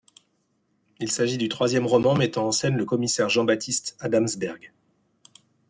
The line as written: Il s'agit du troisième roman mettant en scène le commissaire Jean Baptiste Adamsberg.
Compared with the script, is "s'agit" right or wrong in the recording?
right